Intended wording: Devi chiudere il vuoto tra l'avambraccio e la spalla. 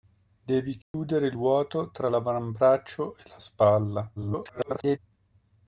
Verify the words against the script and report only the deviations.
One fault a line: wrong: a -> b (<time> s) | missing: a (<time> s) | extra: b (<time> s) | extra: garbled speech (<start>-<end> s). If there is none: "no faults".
extra: garbled speech (4.2-5.0 s)